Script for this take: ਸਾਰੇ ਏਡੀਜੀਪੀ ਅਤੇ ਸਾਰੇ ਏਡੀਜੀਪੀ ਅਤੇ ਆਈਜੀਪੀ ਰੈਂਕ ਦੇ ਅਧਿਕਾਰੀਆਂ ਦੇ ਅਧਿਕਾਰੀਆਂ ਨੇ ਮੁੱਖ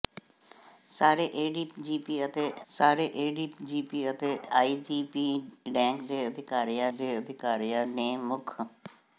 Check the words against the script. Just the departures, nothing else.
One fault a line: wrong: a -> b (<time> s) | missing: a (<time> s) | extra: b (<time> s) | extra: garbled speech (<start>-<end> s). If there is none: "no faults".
no faults